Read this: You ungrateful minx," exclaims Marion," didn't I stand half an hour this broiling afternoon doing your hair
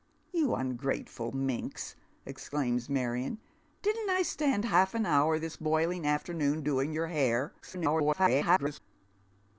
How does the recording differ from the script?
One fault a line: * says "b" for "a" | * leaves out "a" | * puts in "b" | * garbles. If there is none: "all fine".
* garbles